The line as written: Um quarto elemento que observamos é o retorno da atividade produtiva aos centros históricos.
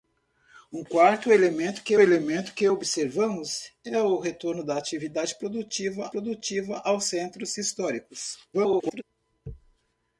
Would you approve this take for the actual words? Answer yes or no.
no